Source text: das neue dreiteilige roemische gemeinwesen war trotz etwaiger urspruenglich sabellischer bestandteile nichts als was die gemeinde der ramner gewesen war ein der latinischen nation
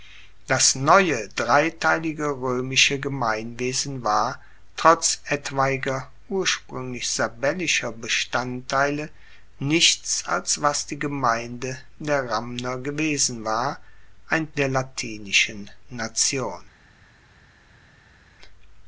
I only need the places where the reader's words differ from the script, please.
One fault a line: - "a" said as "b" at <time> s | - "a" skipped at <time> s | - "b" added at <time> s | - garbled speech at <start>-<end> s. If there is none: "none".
none